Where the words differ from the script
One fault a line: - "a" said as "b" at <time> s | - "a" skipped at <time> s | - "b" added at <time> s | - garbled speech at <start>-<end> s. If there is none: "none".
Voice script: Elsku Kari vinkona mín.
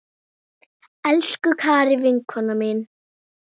none